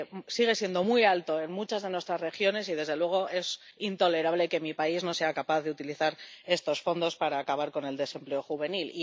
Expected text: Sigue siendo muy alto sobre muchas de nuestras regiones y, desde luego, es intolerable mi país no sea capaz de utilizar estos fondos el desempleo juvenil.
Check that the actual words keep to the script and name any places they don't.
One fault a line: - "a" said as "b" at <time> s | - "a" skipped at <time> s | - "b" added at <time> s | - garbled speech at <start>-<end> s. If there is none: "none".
- "sobre" said as "en" at 1.4 s
- "que" added at 4.5 s
- "para acabar con" added at 7.2 s